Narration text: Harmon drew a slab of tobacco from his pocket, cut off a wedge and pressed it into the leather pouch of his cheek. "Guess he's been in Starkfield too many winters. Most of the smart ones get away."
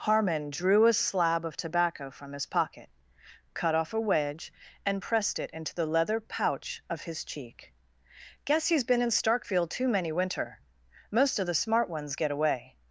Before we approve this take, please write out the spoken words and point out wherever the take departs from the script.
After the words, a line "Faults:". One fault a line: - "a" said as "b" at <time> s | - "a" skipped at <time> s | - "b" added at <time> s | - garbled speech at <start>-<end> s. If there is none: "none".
Harmon drew a slab of tobacco from his pocket, cut off a wedge and pressed it into the leather pouch of his cheek. "Guess he's been in Starkfield too many winter. Most of the smart ones get away."
Faults:
- "winters" said as "winter" at 10.1 s